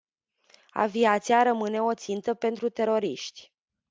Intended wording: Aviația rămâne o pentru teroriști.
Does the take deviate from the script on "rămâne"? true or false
false